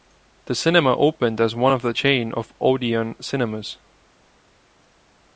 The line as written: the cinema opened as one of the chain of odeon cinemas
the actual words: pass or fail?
pass